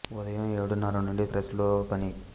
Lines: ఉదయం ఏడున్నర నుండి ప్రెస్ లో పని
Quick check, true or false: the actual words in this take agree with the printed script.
true